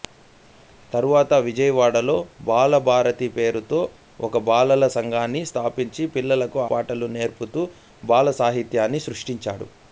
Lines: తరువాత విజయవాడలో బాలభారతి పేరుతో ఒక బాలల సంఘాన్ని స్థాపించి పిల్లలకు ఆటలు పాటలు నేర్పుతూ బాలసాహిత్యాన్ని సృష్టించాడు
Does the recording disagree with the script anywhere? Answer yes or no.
yes